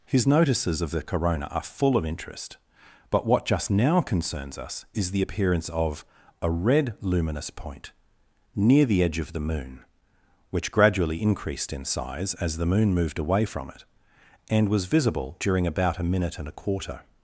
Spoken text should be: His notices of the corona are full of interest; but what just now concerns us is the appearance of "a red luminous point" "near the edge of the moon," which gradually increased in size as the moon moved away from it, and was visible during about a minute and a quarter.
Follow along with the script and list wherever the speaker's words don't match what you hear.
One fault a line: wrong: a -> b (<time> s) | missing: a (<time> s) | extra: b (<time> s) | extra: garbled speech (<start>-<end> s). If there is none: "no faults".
no faults